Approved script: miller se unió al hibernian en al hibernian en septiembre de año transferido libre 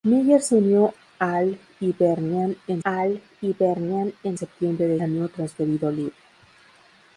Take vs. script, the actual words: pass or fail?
pass